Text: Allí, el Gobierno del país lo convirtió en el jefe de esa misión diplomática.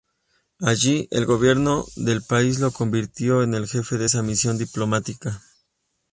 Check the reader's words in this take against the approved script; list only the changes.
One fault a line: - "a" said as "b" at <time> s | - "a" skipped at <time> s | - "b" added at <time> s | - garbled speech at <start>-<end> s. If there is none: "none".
none